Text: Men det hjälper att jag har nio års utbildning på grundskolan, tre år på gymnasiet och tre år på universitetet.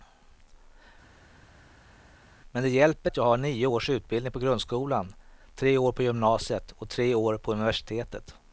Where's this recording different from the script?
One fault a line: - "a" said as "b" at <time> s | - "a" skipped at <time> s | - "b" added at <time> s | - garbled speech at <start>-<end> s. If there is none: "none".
none